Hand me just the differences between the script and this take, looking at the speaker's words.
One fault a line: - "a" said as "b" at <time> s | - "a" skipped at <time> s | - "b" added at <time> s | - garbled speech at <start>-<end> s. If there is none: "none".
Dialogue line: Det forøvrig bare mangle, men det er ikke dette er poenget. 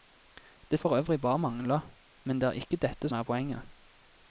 none